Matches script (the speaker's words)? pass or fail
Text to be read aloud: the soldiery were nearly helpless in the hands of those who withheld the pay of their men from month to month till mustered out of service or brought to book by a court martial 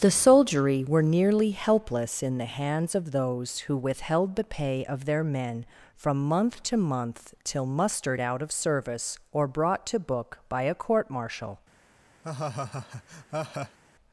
pass